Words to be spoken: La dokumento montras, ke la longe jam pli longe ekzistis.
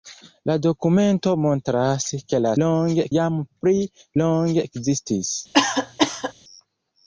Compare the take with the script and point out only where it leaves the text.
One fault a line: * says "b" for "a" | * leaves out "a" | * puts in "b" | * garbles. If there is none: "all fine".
all fine